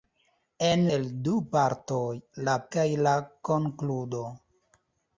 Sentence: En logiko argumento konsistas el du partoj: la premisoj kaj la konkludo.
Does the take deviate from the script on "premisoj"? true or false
true